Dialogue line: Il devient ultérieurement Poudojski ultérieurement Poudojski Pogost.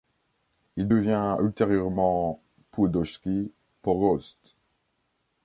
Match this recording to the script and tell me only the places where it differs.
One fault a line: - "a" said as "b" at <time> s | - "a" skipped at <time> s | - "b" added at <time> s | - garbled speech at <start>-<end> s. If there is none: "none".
- "ultérieurement Poudojski" skipped at 3.5 s